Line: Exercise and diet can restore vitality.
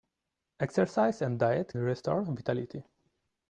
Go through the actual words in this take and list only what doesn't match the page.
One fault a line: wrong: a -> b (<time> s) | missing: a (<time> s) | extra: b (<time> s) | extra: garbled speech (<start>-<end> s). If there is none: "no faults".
missing: can (1.8 s)